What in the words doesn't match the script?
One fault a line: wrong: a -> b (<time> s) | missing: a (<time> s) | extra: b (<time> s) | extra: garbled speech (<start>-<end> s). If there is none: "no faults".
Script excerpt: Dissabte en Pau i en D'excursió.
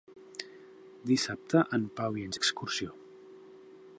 no faults